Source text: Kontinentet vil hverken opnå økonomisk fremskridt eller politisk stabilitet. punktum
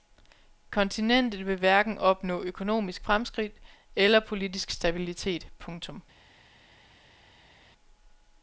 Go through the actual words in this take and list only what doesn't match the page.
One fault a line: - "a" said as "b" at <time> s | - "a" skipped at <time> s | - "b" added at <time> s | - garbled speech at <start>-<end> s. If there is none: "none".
none